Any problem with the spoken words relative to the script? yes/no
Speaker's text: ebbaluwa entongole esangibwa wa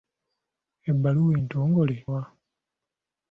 yes